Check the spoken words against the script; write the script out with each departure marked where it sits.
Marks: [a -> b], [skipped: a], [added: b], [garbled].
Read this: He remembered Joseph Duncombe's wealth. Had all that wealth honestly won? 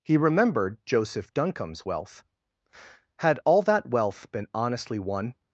He remembered Joseph Duncombe's wealth. Had all that wealth [added: been] honestly won?